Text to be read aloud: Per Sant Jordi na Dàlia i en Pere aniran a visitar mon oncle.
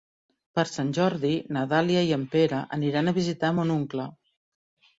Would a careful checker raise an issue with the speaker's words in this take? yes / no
no